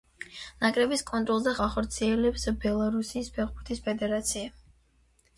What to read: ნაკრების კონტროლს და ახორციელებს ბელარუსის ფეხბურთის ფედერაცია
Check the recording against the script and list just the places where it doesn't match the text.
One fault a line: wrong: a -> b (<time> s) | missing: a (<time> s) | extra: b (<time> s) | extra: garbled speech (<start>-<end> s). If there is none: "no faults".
no faults